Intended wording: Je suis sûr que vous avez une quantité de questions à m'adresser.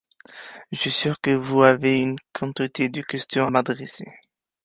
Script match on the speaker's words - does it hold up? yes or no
no